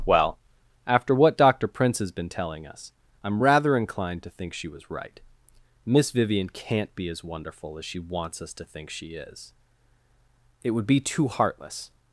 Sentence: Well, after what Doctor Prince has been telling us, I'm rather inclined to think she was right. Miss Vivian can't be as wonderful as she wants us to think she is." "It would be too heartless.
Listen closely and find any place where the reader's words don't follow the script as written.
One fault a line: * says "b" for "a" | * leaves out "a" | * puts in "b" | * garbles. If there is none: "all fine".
all fine